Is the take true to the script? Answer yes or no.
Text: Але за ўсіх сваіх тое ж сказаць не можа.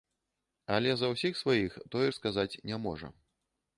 yes